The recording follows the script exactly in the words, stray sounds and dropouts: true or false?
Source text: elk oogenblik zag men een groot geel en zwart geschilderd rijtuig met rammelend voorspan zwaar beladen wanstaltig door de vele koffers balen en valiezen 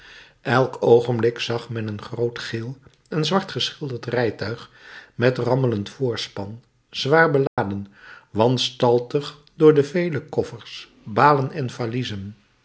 false